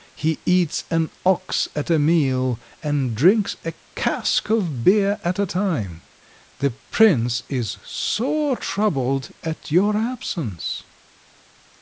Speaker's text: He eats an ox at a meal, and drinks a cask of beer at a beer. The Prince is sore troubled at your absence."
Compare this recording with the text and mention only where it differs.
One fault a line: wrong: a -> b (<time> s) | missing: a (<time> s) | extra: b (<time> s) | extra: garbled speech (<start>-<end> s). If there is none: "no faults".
wrong: beer -> time (5.4 s)